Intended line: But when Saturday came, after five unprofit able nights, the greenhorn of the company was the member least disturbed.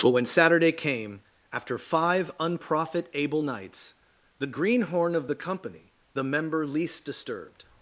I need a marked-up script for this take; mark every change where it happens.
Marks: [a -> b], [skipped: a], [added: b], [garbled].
But when Saturday came, after five unprofit able nights, the greenhorn of the company [skipped: was] the member least disturbed.